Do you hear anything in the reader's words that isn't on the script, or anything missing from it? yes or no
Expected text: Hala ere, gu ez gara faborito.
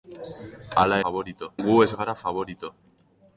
yes